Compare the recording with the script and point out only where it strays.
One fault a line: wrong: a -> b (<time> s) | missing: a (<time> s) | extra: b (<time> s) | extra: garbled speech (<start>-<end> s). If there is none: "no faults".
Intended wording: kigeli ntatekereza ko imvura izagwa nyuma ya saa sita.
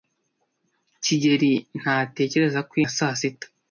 missing: imvura izagwa nyuma (2.7 s)